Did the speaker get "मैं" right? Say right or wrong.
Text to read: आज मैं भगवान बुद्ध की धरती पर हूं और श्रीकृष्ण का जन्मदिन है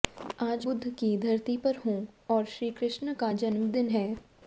wrong